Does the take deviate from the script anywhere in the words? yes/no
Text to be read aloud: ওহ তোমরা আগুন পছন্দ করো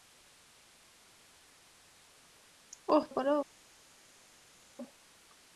yes